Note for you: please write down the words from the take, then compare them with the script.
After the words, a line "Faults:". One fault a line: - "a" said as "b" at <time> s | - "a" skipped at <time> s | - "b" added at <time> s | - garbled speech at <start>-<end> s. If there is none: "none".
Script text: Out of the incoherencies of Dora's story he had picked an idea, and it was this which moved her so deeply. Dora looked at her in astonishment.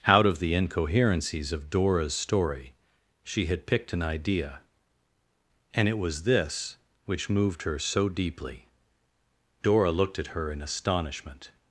Out of the incoherencies of Dora's story she had picked an idea, and it was this which moved her so deeply. Dora looked at her in astonishment.
Faults:
- "he" said as "she" at 3.2 s